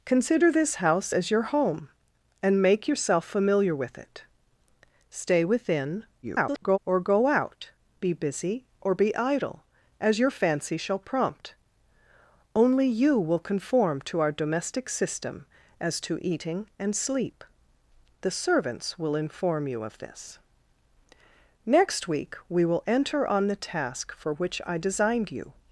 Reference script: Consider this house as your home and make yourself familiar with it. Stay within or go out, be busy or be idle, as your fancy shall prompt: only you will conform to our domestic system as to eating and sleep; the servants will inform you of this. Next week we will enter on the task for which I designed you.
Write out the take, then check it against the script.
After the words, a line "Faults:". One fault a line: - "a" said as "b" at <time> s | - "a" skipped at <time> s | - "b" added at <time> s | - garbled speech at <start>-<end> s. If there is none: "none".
Consider this house as your home and make yourself familiar with it. Stay within [garbled] or go out, be busy or be idle, as your fancy shall prompt: only you will conform to our domestic system as to eating and sleep; the servants will inform you of this. Next week we will enter on the task for which I designed you.
Faults:
- garbled speech at 6.2-6.8 s